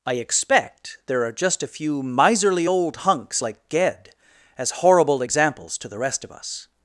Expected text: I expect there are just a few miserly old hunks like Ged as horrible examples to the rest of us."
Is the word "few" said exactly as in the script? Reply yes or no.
yes